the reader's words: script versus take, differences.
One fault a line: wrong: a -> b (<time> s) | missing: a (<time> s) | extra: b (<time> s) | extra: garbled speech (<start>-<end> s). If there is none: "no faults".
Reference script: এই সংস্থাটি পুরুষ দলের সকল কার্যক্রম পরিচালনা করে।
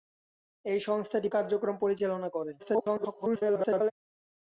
missing: পুরুষ দলের সকল (1.3 s)
extra: garbled speech (2.6-3.9 s)